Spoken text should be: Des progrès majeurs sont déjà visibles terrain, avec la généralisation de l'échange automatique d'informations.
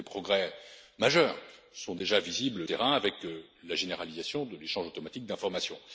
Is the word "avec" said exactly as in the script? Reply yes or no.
yes